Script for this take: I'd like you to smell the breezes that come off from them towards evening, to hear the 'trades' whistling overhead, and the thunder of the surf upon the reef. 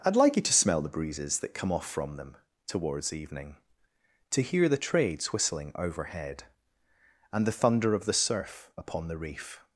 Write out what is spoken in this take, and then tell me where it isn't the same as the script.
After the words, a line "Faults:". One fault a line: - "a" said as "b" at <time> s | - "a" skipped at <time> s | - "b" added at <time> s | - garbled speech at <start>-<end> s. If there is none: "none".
I'd like you to smell the breezes that come off from them towards evening, to hear the 'trades' whistling overhead, and the thunder of the surf upon the reef.
Faults:
none